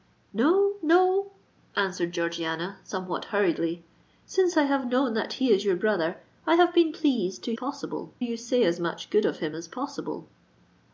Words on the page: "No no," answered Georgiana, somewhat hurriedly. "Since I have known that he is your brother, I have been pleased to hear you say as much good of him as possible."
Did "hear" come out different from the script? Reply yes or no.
yes